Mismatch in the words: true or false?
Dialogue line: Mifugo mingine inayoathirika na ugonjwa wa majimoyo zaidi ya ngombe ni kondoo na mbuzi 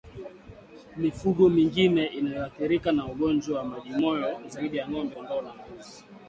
true